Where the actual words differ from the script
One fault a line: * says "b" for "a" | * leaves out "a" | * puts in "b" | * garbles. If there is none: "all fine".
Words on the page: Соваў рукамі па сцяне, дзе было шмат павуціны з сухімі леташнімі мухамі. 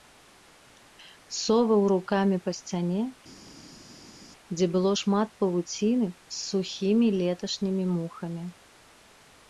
all fine